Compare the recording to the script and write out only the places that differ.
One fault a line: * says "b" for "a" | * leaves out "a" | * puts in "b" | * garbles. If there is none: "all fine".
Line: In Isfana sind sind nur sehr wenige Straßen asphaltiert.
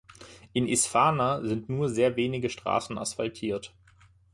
* leaves out "sind"